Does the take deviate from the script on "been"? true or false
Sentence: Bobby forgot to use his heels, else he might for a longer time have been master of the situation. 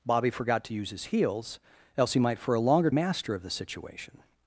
true